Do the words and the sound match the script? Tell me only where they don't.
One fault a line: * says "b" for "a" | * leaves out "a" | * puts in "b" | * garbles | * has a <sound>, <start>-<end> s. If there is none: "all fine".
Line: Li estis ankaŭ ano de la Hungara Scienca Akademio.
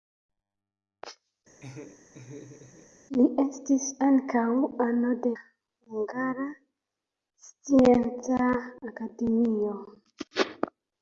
* has a laugh, 1.6-2.9 s
* leaves out "la"